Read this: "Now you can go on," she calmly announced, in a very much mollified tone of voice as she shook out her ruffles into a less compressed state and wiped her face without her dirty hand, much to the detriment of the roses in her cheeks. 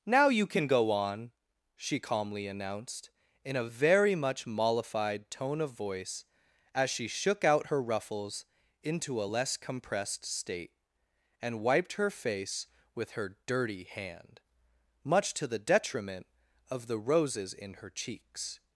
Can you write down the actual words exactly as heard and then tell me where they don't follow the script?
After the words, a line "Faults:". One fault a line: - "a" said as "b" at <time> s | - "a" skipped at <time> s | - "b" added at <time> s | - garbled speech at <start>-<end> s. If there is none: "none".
"Now you can go on," she calmly announced, in a very much mollified tone of voice as she shook out her ruffles into a less compressed state and wiped her face with her dirty hand, much to the detriment of the roses in her cheeks.
Faults:
- "without" said as "with" at 12.9 s